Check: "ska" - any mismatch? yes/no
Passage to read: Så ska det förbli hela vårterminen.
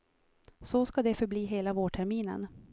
no